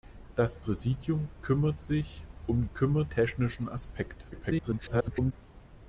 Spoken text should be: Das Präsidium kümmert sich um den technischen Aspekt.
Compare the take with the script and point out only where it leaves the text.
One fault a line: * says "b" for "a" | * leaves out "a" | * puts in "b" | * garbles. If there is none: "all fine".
* says "kümmert" for "den"
* garbles